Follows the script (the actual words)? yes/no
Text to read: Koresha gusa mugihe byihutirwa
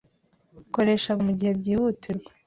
no